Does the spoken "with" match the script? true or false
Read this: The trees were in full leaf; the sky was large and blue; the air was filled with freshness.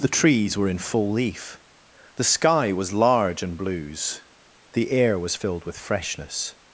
true